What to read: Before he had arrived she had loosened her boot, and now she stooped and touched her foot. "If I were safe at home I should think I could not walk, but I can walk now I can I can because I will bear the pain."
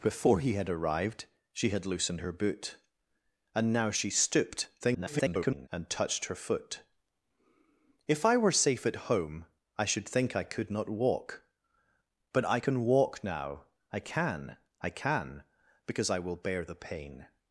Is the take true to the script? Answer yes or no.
no